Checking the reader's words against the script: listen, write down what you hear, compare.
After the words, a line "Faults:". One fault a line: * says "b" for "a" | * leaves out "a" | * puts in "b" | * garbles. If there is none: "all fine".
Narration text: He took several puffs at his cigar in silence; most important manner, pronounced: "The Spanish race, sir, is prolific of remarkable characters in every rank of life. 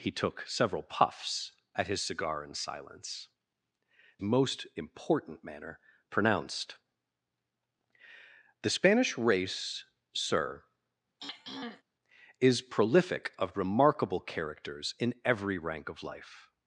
He took several puffs at his cigar in silence; most important manner, pronounced: "The Spanish race, sir, is prolific of remarkable characters in every rank of life.
Faults:
all fine